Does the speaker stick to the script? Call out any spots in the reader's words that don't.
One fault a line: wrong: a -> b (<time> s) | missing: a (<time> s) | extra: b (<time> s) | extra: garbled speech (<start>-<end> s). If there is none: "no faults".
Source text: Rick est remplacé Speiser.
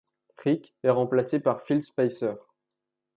extra: par Phil (1.4 s)